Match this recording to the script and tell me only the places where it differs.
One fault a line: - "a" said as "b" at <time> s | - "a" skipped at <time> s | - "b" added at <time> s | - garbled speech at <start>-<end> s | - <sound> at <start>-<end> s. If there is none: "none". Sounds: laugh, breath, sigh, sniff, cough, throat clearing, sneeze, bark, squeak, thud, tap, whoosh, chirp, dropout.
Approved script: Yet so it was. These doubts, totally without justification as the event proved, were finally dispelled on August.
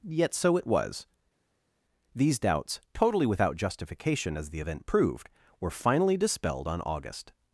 none